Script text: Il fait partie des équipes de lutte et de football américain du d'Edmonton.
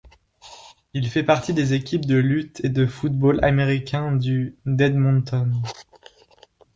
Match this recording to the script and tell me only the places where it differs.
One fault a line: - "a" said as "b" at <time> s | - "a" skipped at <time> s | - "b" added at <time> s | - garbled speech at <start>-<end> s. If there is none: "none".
none